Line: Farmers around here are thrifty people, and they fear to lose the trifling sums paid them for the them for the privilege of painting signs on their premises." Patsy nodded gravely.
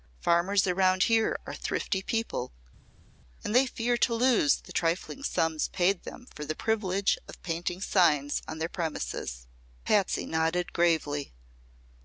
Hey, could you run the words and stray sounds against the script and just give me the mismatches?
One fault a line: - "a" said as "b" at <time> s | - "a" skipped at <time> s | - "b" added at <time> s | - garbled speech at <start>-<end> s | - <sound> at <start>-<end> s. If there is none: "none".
- "them for the" skipped at 6.6 s